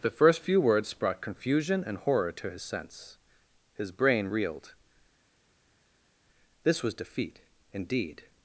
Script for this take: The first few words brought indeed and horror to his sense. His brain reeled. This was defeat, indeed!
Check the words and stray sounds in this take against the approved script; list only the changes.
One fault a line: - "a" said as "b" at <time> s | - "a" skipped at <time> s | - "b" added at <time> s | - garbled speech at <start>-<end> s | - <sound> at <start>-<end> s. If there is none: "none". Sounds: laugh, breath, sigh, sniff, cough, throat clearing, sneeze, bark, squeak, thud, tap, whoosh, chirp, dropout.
- "indeed" said as "confusion" at 1.2 s